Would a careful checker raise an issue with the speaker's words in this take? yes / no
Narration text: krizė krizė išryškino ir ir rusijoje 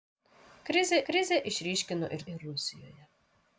no